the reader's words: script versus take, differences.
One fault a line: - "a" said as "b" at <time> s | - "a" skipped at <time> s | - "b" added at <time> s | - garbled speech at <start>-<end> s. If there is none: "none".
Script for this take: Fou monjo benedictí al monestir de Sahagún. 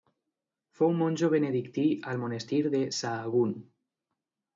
none